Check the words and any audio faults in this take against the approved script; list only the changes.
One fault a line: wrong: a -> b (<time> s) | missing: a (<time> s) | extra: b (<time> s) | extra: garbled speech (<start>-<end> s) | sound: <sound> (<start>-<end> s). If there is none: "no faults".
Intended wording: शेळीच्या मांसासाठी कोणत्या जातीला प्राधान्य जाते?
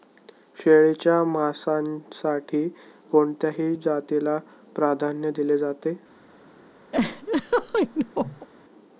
extra: दिले (5.4 s)
sound: laugh (6.9-8.5 s)